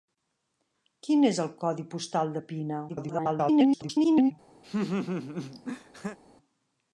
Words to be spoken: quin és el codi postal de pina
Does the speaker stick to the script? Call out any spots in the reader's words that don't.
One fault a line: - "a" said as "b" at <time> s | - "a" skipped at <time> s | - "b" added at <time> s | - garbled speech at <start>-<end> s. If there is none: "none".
- garbled speech at 2.9-4.3 s